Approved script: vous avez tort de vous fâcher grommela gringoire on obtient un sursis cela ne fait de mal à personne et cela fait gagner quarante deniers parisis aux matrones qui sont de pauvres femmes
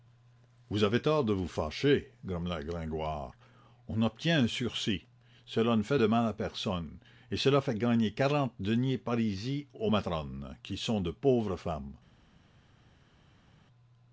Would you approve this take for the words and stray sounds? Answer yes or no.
yes